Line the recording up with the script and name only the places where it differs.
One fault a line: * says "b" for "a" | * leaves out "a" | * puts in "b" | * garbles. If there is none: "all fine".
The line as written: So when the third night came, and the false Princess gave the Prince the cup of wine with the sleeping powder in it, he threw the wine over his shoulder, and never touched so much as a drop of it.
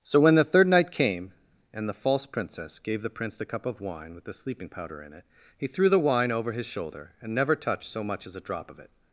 all fine